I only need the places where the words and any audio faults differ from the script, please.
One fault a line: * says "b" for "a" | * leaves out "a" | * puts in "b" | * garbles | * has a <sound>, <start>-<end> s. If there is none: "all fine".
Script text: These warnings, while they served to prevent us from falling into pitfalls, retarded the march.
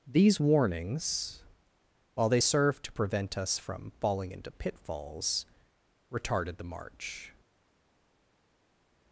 all fine